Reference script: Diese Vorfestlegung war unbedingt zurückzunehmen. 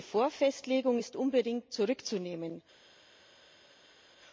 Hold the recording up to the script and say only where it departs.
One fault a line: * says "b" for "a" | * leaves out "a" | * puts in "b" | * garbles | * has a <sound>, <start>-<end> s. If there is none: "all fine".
* says "ist" for "war"